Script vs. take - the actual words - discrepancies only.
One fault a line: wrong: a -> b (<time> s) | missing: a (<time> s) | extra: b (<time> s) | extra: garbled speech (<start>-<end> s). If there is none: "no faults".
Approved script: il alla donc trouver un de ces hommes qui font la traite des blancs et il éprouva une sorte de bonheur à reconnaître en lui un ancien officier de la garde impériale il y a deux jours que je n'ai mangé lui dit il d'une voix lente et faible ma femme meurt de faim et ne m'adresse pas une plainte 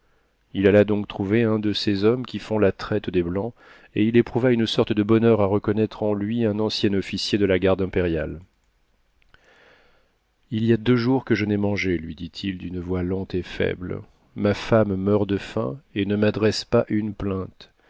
no faults